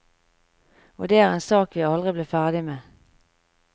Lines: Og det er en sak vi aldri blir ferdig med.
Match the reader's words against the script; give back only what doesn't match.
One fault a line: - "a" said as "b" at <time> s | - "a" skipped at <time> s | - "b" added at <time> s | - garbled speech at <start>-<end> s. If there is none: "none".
none